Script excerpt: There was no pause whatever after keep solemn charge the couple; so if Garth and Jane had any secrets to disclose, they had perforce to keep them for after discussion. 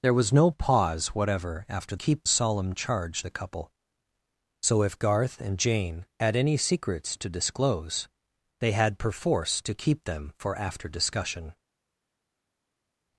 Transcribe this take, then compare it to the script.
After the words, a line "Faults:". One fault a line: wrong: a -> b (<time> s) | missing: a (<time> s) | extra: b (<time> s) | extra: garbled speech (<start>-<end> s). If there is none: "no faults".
There was no pause whatever after keep solemn charge the couple; so if Garth and Jane had any secrets to disclose, they had perforce to keep them for after discussion.
Faults:
no faults